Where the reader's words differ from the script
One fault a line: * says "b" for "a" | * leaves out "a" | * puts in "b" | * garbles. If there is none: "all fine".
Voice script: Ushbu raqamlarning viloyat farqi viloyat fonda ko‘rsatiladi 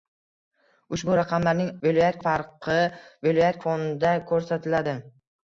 all fine